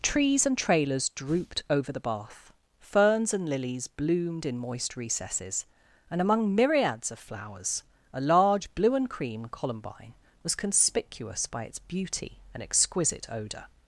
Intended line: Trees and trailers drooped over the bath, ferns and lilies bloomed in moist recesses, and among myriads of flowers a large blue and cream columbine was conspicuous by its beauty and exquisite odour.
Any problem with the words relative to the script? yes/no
no